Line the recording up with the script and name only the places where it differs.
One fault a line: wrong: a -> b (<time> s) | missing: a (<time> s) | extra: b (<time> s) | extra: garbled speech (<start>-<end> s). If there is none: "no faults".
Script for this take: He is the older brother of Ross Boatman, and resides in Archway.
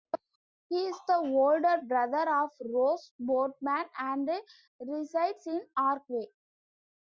no faults